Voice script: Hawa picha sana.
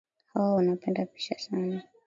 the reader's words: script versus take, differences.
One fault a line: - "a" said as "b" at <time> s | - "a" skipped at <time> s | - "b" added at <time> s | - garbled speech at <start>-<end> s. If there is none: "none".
- "wanapenda" added at 0.5 s